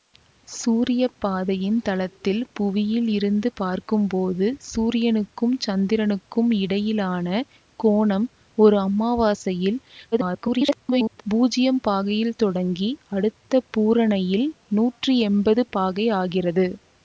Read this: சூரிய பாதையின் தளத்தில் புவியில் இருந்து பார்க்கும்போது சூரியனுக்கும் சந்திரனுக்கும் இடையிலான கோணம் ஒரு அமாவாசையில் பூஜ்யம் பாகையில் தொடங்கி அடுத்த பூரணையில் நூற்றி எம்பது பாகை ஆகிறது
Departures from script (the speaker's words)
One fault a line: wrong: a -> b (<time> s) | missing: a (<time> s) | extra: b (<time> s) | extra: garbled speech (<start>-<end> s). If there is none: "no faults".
extra: garbled speech (10.1-11.2 s)